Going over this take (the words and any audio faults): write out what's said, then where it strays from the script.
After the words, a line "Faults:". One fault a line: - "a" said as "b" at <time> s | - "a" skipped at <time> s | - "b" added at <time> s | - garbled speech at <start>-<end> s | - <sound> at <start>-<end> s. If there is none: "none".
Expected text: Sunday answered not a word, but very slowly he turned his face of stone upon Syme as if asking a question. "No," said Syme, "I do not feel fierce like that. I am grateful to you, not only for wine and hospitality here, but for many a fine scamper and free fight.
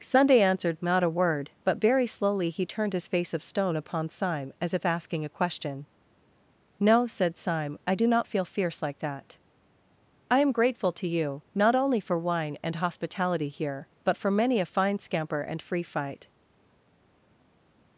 Sunday answered not a word, but very slowly he turned his face of stone upon Syme as if asking a question. "No," said Syme, "I do not feel fierce like that. I am grateful to you, not only for wine and hospitality here, but for many a fine scamper and free fight.
Faults:
none